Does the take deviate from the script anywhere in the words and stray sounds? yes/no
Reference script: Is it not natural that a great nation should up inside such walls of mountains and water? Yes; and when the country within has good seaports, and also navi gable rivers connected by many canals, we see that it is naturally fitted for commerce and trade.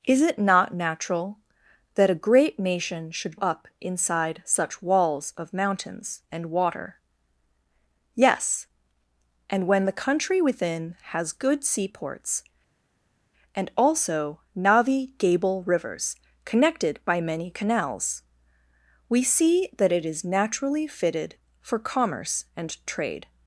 no